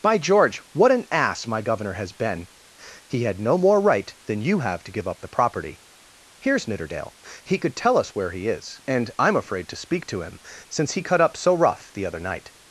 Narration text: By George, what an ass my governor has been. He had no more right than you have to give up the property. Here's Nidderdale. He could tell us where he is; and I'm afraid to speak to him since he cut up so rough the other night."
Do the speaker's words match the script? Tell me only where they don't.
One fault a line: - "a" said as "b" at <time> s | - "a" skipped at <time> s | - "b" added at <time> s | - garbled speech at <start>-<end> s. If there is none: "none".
none